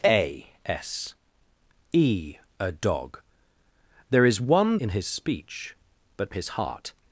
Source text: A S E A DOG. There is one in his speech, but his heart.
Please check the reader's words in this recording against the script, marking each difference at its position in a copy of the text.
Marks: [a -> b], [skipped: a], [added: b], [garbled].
A S E A DOG. There is one in his speech, but his heart.